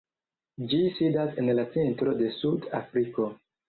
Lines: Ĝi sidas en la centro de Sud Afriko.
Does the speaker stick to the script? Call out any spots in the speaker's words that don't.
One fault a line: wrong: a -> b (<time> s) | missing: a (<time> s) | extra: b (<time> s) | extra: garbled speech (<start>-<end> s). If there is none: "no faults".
no faults